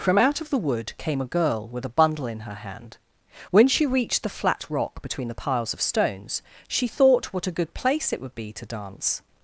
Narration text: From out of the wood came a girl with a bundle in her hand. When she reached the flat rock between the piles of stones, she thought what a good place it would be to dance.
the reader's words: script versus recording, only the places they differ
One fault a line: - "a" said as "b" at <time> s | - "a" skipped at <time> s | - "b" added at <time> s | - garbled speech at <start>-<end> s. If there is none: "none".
none